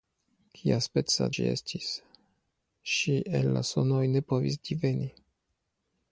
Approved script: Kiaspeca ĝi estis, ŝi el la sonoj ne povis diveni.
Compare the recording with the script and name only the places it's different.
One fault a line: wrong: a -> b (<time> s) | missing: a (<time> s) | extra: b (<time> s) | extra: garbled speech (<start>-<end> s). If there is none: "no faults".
no faults